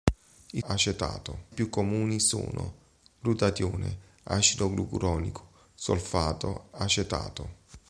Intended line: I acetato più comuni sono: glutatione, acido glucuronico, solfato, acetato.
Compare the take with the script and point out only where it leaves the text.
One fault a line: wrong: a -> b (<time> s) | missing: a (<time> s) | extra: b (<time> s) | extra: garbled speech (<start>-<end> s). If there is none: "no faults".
no faults